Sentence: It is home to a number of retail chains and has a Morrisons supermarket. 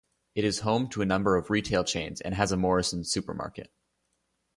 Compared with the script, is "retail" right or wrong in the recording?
right